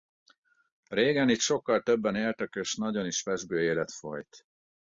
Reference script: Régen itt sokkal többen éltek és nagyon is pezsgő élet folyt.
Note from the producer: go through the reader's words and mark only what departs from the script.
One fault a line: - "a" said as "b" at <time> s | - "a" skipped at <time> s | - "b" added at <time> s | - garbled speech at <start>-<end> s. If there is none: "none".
none